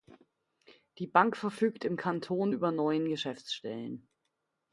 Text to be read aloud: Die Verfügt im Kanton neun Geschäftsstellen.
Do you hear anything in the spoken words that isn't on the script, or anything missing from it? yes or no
yes